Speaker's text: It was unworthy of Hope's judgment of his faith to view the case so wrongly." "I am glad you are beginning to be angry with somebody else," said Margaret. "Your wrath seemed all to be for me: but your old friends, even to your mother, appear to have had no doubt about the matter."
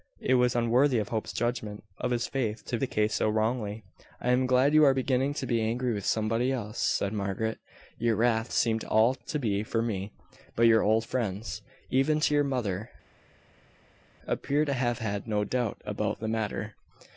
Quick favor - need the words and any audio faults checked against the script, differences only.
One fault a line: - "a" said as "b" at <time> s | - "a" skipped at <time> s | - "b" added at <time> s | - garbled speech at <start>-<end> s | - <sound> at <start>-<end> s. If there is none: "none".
- "view" skipped at 2.8 s